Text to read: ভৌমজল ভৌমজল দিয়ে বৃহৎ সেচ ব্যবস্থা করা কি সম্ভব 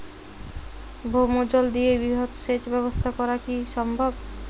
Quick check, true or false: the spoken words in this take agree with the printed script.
false